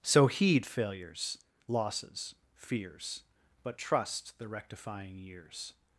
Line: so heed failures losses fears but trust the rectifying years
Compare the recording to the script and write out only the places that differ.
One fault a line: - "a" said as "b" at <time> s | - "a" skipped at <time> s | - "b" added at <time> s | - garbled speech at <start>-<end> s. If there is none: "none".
none